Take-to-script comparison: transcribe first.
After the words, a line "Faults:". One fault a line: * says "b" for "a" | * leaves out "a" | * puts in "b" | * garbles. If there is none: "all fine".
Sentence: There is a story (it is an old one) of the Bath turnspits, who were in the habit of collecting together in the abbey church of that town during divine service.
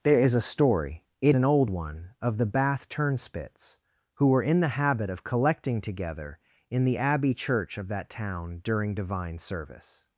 There is a story (it an old one) of the Bath turnspits, who were in the habit of collecting together in the abbey church of that town during divine service.
Faults:
* leaves out "is"